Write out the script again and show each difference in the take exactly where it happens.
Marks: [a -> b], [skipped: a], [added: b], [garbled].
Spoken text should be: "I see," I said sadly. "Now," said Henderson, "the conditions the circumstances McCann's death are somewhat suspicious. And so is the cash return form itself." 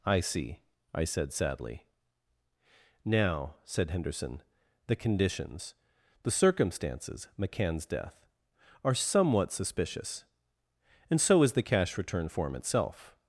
"I see," I said sadly. "Now," said Henderson, "the conditions the circumstances McCann's death are somewhat suspicious. And so is the cash return form itself."